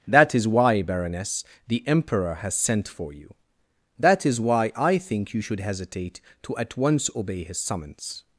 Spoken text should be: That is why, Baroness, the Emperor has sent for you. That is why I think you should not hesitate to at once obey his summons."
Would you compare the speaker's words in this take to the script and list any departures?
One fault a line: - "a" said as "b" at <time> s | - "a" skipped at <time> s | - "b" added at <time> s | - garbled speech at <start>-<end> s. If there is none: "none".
- "not" skipped at 5.6 s